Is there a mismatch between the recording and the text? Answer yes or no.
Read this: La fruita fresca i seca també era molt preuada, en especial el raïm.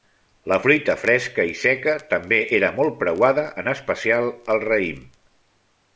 no